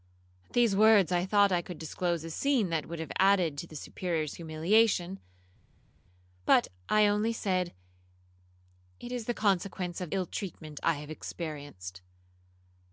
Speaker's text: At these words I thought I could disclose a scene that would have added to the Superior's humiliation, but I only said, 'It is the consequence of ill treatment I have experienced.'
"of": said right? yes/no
yes